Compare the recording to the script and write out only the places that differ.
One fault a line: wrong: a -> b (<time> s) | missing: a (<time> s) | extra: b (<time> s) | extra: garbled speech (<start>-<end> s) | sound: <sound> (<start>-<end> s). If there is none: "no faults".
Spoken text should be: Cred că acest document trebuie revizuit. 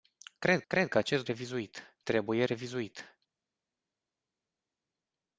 extra: cred (0.7 s)
wrong: document -> revizuit (1.2 s)